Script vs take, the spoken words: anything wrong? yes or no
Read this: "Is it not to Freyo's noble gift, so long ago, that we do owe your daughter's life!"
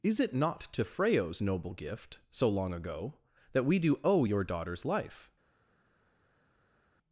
no